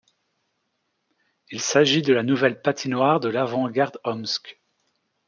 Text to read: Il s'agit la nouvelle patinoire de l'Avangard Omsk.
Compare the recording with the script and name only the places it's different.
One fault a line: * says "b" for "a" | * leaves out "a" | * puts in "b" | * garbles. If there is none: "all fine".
* puts in "de"